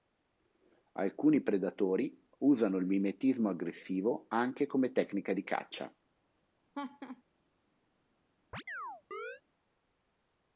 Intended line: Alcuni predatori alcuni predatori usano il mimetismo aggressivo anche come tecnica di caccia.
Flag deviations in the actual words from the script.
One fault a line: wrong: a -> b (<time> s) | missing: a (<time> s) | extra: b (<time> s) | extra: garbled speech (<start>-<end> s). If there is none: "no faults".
missing: alcuni predatori (2.3 s)